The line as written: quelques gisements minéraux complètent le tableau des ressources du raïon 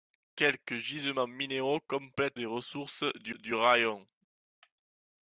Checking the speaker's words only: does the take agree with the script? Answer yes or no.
no